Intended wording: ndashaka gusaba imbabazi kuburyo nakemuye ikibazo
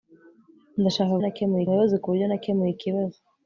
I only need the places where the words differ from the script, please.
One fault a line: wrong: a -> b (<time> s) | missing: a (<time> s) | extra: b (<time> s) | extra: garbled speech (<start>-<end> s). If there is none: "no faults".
wrong: gusaba -> nakemuye (1.2 s)